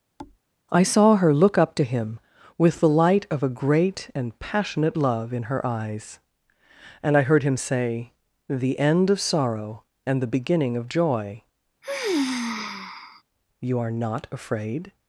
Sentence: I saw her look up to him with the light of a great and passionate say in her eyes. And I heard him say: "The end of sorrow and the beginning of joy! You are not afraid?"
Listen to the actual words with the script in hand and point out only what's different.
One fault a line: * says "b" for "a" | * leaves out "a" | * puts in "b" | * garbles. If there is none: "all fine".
* says "love" for "say"